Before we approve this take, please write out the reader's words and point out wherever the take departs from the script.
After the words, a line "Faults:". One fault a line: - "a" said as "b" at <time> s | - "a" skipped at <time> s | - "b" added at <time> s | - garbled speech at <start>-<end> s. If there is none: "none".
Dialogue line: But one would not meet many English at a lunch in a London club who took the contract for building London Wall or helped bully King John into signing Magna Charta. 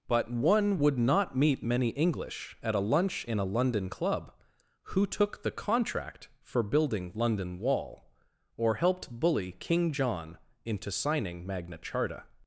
But one would not meet many English at a lunch in a London club who took the contract for building London Wall or helped bully King John into signing Magna Charta.
Faults:
none